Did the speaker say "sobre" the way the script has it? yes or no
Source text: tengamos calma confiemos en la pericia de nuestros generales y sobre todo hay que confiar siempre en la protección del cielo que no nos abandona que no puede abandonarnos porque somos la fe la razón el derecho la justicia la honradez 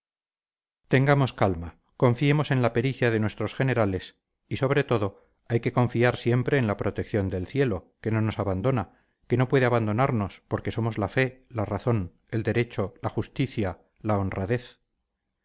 yes